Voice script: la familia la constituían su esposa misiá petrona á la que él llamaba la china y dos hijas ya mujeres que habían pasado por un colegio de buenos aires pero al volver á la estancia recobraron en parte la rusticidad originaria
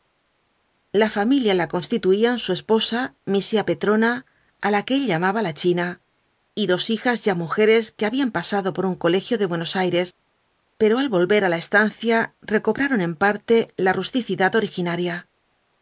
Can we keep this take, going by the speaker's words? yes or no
yes